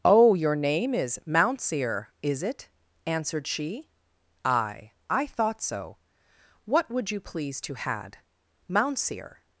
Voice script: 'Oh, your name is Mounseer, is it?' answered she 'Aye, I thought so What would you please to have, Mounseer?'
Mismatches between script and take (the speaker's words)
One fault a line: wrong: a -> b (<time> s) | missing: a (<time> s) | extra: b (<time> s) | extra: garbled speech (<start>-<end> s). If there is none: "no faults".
wrong: have -> had (7.8 s)